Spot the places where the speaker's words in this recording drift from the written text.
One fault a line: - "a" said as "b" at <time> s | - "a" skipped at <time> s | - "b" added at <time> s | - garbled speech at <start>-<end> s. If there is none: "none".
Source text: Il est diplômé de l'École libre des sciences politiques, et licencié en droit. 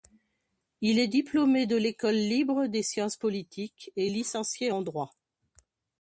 none